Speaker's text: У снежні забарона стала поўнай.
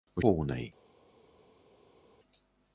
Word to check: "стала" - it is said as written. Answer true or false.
false